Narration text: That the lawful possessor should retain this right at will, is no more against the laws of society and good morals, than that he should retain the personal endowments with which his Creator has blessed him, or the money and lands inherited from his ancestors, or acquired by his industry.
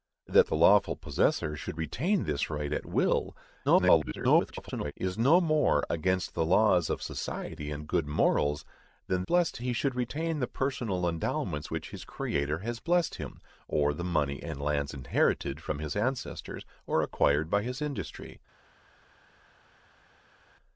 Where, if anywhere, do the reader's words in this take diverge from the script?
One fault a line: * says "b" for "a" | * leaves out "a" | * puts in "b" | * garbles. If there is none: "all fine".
* garbles
* says "blessed" for "that"
* leaves out "with"